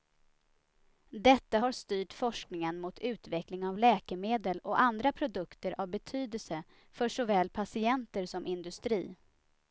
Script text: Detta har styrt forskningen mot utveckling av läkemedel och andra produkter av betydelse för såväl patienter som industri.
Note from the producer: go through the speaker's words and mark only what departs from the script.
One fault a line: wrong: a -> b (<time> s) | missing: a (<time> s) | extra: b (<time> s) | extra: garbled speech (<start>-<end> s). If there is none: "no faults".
no faults